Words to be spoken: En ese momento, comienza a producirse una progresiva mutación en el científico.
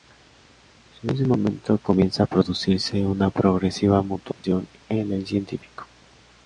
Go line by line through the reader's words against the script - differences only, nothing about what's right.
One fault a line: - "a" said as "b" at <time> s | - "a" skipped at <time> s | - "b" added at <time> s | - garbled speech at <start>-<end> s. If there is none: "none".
none